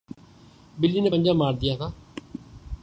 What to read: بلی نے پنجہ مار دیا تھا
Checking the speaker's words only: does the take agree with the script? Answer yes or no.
yes